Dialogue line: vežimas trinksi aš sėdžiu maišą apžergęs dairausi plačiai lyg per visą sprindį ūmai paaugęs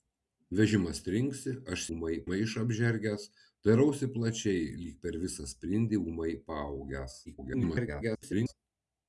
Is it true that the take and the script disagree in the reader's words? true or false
true